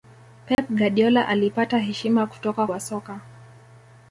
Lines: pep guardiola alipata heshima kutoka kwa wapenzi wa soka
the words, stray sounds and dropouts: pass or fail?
fail